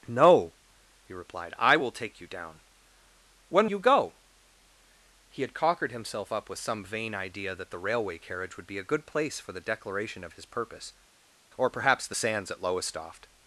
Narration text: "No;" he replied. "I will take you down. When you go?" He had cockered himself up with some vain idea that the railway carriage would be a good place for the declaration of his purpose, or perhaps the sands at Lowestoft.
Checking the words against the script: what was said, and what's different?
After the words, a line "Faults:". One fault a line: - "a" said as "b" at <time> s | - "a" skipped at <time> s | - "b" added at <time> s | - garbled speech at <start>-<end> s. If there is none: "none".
"No;" he replied. "I will take you down. When you go?" He had cockered himself up with some vain idea that the railway carriage would be a good place for the declaration of his purpose, or perhaps the sands at Lowestoft.
Faults:
none